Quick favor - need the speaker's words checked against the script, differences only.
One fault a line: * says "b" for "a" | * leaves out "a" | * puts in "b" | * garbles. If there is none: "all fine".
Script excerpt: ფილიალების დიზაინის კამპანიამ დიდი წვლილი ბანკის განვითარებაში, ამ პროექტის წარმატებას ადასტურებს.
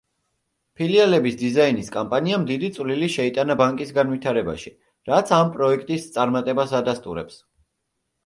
* puts in "შეიტანა"
* puts in "რაც"